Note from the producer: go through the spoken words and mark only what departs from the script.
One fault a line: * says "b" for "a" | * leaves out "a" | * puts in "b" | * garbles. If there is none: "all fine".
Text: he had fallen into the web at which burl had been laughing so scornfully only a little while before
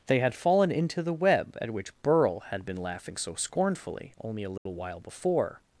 * says "they" for "he"